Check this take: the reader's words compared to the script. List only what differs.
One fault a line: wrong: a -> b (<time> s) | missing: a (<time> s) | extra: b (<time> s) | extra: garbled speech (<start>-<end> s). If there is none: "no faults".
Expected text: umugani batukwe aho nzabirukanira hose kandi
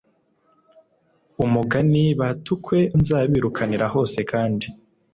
missing: aho (2.8 s)